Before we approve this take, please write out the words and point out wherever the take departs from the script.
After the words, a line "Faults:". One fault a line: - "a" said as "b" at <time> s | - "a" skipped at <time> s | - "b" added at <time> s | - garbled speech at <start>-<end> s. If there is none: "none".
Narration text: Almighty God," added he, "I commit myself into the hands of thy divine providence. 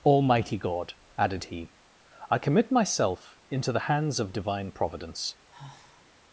Almighty God," added he, "I commit myself into the hands of divine providence.
Faults:
- "thy" skipped at 4.3 s